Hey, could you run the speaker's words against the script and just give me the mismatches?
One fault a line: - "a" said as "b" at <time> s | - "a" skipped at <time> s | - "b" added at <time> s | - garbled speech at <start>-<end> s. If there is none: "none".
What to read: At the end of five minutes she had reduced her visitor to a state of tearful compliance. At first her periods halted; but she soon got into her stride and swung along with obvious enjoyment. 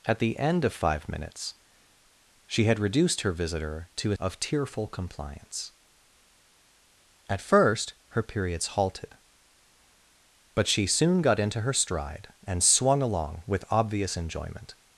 - "state" skipped at 4.2 s